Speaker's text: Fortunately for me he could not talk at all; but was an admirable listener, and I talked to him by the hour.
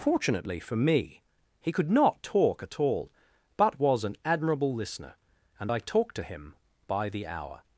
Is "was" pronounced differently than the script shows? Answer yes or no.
no